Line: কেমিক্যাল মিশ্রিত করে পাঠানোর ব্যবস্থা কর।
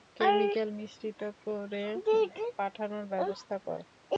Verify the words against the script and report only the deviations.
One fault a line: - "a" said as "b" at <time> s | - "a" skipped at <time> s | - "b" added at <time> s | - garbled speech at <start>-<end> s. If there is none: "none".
none